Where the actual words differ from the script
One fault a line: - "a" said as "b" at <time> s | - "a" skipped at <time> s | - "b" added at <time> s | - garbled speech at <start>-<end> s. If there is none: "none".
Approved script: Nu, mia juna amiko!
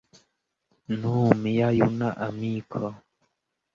none